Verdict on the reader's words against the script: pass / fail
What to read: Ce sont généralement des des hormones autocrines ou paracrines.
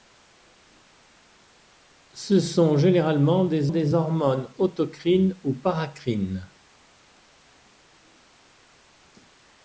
pass